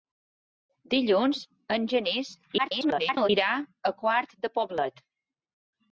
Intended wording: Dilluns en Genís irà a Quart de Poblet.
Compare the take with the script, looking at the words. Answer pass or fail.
fail